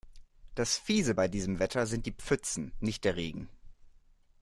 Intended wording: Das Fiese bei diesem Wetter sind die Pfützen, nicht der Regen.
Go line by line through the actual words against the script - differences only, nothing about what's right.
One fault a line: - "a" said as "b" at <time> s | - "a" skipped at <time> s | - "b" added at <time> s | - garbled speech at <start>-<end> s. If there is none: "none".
none